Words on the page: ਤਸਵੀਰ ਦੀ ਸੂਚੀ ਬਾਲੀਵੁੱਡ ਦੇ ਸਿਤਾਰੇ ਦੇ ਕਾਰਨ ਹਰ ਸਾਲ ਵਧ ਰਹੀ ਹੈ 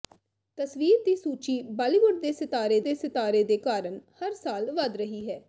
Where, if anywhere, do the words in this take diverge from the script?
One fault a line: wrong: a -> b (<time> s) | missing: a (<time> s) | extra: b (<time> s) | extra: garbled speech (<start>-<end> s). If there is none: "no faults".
extra: ਸਿਤਾਰੇ ਦੇ (3.0 s)